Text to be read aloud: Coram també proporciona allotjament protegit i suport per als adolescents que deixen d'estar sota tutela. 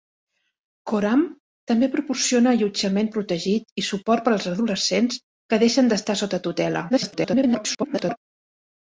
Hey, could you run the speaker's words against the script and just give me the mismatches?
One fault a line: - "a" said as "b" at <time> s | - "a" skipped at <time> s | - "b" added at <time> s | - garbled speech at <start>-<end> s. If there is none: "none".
- garbled speech at 6.9-8.2 s